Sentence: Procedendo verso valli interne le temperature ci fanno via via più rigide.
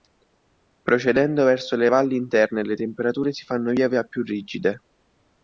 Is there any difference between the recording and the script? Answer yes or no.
yes